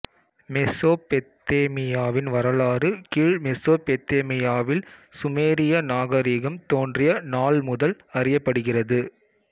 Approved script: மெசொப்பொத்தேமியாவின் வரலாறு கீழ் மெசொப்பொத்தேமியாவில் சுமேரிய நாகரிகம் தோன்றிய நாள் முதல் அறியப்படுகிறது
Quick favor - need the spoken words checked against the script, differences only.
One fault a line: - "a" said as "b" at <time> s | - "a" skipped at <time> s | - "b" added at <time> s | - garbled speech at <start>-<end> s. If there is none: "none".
none